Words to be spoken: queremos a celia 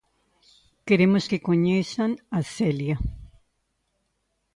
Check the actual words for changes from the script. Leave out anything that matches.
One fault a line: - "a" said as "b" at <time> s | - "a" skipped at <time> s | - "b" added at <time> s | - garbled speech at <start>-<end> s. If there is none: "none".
- "que coñezan" added at 1.3 s